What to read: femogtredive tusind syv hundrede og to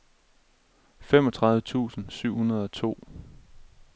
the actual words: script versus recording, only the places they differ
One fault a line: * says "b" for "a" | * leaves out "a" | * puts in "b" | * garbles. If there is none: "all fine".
all fine